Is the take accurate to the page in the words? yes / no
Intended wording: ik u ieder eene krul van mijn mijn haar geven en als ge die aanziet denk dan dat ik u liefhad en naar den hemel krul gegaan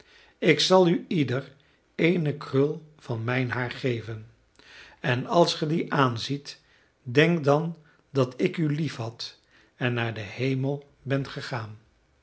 no